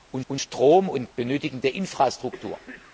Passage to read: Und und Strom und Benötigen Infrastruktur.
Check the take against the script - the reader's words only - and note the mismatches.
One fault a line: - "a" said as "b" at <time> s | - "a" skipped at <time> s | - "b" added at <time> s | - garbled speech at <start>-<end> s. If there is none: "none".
none